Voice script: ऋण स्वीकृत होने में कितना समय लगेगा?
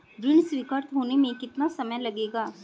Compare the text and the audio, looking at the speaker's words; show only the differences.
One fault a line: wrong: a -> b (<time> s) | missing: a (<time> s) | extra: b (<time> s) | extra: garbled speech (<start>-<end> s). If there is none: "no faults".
no faults